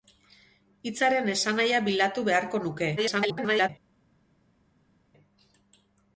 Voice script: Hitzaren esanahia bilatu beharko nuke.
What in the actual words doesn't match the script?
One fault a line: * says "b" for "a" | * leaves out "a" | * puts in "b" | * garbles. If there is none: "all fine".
* garbles